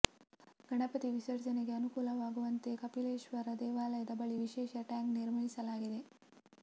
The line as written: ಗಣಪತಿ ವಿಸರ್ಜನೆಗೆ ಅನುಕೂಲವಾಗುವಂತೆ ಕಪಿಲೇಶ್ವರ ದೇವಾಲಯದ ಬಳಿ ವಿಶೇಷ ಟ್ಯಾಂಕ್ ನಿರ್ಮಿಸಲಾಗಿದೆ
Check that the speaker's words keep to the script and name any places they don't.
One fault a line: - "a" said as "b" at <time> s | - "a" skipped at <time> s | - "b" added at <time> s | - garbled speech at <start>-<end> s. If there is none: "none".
none